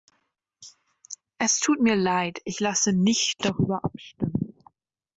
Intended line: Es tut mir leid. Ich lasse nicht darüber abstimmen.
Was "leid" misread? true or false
false